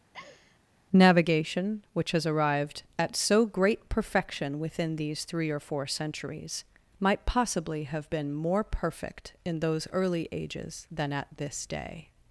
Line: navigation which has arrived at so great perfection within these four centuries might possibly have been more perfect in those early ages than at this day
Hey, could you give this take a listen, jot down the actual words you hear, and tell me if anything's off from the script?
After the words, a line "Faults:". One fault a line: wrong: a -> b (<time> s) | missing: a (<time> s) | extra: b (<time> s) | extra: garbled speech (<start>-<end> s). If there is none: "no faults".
navigation which has arrived at so great perfection within these three or four centuries might possibly have been more perfect in those early ages than at this day
Faults:
extra: three or (5.2 s)